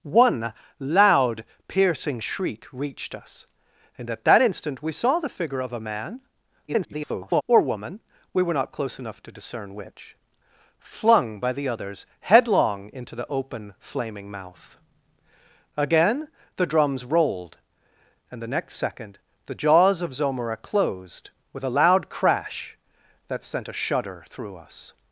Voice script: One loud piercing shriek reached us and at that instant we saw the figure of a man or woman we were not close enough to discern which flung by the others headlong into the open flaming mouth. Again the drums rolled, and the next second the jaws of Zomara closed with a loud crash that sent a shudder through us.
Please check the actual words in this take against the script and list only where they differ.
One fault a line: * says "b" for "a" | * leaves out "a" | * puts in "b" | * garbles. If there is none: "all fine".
* garbles